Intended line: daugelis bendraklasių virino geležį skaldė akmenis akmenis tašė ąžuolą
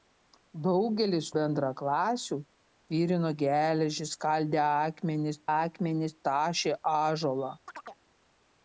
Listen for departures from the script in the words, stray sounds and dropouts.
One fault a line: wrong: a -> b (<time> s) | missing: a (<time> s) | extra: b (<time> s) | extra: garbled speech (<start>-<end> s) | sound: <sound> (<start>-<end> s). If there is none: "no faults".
sound: chirp (7.7-8.0 s)